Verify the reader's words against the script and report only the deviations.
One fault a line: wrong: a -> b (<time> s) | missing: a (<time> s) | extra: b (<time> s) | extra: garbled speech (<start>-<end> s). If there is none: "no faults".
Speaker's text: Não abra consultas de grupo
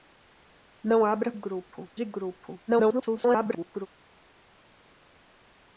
wrong: consultas -> grupo (1.3 s)
extra: garbled speech (2.7-3.9 s)